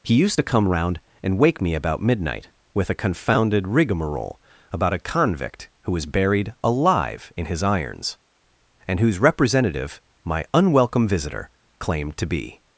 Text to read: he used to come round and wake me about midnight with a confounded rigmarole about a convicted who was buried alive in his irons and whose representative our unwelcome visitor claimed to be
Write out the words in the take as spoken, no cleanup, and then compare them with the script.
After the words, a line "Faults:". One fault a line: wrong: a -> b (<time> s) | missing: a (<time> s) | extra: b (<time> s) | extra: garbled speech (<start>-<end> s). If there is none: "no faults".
he used to come round and wake me about midnight with a confounded rigmarole about a convict who was buried alive in his irons and whose representative my unwelcome visitor claimed to be
Faults:
wrong: convicted -> convict (5.0 s)
wrong: our -> my (10.2 s)